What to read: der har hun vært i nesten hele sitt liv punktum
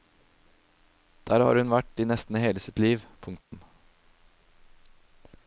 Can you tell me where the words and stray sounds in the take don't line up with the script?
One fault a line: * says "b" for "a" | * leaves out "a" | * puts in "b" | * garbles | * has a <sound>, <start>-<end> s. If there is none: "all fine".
* has a dropout, 3.4-3.5 s